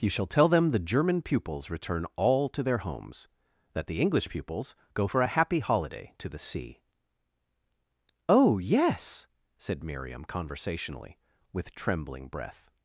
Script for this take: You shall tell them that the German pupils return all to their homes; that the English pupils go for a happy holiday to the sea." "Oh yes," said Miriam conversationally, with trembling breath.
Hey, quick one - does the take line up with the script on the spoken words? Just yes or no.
no